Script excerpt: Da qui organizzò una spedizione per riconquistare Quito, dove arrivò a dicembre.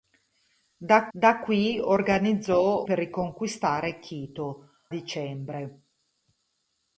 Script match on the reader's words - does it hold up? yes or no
no